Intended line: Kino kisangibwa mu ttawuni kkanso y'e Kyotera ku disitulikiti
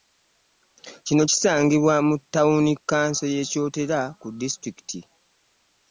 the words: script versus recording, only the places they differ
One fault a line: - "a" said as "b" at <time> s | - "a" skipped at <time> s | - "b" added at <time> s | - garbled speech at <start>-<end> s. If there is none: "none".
none